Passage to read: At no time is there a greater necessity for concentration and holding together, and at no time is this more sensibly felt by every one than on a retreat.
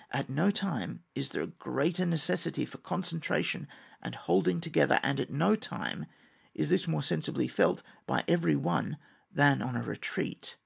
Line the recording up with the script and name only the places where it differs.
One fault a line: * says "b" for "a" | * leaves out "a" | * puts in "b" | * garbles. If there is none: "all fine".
all fine